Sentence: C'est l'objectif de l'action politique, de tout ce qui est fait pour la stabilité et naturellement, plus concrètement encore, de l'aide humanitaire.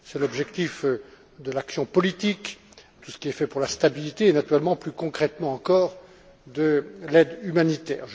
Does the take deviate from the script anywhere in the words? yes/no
yes